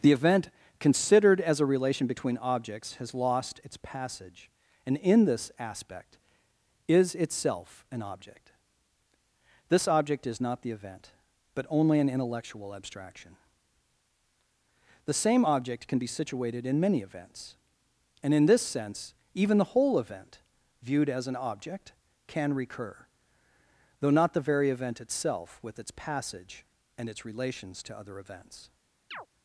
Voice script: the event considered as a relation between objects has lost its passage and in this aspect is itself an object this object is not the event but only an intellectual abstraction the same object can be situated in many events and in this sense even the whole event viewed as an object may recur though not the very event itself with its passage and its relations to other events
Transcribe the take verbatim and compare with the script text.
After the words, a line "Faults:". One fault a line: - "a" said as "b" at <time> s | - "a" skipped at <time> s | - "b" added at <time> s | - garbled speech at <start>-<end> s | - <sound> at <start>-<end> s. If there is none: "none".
the event considered as a relation between objects has lost its passage and in this aspect is itself an object this object is not the event but only an intellectual abstraction the same object can be situated in many events and in this sense even the whole event viewed as an object can recur though not the very event itself with its passage and its relations to other events
Faults:
- "may" said as "can" at 22.3 s
- chirp at 29.1-29.3 s